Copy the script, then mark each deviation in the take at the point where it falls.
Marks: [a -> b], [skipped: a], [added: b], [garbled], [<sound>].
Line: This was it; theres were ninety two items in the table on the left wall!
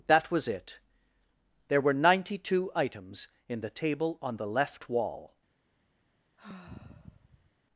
[This -> That] was it; [theres -> there] were ninety two items in the table on the left wall! [sigh]